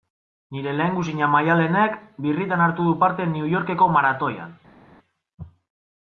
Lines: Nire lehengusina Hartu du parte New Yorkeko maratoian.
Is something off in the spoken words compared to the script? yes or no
yes